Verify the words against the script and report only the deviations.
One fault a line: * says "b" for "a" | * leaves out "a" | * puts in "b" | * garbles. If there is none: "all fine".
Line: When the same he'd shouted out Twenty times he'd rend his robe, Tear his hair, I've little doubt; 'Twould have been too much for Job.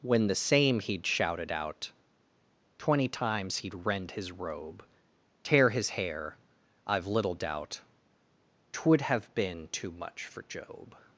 all fine